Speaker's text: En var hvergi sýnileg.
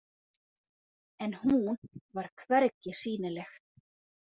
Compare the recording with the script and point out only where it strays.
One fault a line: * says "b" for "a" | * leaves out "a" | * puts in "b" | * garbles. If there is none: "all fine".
* puts in "hún"